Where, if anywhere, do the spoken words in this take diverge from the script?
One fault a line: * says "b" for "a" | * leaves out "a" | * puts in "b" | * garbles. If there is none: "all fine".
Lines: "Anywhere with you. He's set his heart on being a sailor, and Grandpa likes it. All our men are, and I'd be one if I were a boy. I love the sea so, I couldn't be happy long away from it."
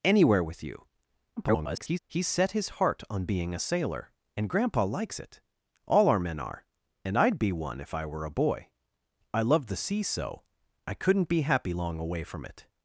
* garbles